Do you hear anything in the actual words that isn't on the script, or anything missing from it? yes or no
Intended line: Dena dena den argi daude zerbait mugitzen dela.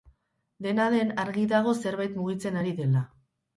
yes